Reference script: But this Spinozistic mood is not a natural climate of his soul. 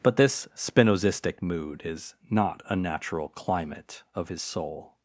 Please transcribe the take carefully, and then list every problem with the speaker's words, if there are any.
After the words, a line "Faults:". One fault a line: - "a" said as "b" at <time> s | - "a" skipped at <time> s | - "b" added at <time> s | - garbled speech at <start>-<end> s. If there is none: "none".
But this Spinozistic mood is not a natural climate of his soul.
Faults:
none